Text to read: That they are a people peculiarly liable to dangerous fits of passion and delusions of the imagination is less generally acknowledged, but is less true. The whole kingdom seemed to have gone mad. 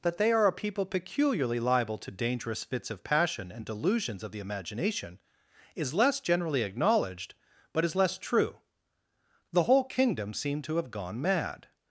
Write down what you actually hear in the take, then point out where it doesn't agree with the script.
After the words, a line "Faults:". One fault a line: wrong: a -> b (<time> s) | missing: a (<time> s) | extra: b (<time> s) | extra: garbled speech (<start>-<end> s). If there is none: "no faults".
That they are a people peculiarly liable to dangerous fits of passion and delusions of the imagination is less generally acknowledged, but is less true. The whole kingdom seemed to have gone mad.
Faults:
no faults